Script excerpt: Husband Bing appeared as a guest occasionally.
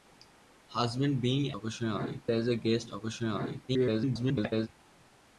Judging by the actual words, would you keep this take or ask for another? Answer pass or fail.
fail